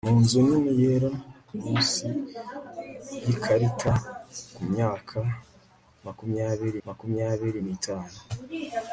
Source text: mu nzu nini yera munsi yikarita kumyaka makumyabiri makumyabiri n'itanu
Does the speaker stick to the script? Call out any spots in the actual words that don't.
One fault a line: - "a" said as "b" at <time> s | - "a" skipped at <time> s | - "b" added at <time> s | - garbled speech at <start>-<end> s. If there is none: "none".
none